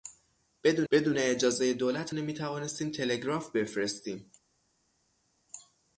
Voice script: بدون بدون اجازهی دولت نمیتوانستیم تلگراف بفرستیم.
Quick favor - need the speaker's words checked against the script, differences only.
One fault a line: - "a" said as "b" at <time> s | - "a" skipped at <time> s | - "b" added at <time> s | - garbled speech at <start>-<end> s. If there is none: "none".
none